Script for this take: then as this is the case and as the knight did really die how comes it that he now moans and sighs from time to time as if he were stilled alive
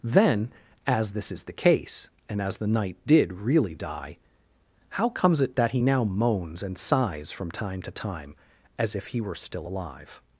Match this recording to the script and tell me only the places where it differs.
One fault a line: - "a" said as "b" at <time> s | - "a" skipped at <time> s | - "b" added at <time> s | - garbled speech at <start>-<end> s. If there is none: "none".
- "stilled" said as "still" at 9.3 s